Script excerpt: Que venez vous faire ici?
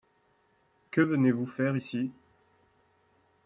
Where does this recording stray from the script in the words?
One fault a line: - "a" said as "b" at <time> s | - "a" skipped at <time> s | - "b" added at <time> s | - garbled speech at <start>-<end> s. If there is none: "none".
none